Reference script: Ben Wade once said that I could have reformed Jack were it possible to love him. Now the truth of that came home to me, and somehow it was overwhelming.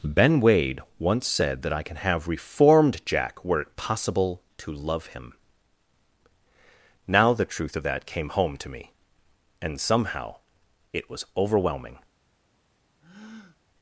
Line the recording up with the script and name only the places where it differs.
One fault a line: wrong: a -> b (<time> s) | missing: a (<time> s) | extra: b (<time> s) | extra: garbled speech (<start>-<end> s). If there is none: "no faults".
wrong: could -> can (1.8 s)